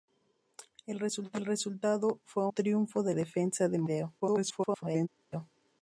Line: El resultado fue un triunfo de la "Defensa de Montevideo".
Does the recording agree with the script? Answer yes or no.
no